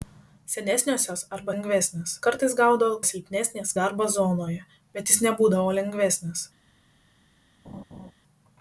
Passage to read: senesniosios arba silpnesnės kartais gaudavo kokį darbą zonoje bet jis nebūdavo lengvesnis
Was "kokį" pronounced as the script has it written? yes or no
no